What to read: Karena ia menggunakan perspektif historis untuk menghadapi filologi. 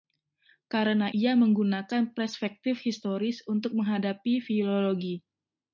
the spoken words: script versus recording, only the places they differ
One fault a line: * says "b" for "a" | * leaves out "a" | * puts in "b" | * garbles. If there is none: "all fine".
all fine